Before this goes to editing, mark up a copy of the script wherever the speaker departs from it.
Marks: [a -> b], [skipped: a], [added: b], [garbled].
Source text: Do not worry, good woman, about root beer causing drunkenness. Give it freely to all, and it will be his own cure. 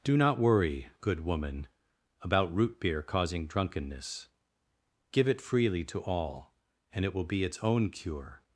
Do not worry, good woman, about root beer causing drunkenness. Give it freely to all, and it will be [his -> its] own cure.